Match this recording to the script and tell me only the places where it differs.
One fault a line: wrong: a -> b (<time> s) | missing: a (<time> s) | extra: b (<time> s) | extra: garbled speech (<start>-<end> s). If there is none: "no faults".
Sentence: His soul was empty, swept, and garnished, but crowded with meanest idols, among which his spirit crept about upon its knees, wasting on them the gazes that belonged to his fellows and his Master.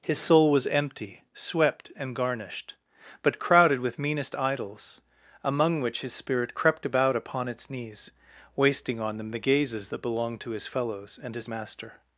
no faults